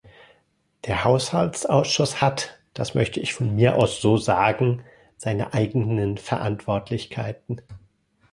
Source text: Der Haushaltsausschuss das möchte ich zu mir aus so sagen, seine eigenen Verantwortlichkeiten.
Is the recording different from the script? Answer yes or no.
yes